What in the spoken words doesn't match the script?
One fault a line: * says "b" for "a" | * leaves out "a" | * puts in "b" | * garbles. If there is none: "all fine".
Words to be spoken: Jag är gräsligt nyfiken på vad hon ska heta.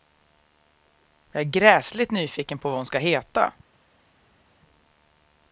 all fine